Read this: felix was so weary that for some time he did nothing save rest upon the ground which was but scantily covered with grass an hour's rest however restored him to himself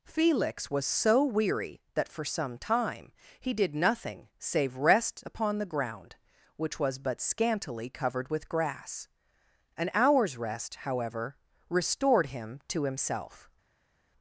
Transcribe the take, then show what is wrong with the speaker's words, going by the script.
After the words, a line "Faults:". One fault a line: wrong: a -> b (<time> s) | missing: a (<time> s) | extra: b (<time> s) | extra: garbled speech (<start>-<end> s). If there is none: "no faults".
felix was so weary that for some time he did nothing save rest upon the ground which was but scantily covered with grass an hour's rest however restored him to himself
Faults:
no faults